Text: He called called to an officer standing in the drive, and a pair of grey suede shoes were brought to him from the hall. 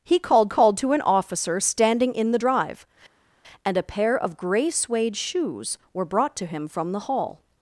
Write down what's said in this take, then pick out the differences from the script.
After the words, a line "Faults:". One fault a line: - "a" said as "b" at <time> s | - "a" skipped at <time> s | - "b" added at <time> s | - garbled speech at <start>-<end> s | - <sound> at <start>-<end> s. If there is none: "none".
He called called to an officer standing in the drive, and a pair of grey suede shoes were brought to him from the hall.
Faults:
none